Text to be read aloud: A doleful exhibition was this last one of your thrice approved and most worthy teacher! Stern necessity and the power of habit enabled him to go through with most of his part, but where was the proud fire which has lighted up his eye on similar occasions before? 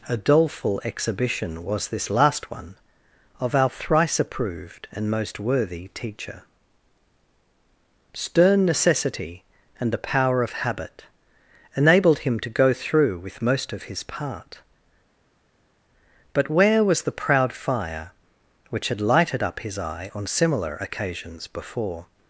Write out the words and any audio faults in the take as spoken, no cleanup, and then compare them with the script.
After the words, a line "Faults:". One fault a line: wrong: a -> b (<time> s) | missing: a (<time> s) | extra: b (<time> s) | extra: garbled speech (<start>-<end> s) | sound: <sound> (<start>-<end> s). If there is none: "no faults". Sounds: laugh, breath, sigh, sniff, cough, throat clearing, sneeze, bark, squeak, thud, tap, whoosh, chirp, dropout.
A doleful exhibition was this last one of our thrice approved and most worthy teacher! Stern necessity and the power of habit enabled him to go through with most of his part, but where was the proud fire which had lighted up his eye on similar occasions before?
Faults:
wrong: your -> our (3.5 s)
wrong: has -> had (18.9 s)